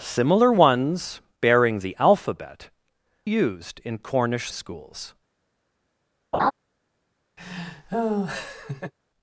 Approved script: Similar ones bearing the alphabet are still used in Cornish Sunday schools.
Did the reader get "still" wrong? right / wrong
wrong